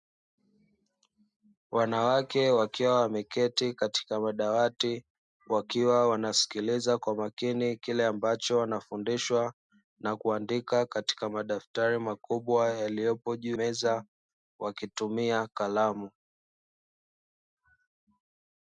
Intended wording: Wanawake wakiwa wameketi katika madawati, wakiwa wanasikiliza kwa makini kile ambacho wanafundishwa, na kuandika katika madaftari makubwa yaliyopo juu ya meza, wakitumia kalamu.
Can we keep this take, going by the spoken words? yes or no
no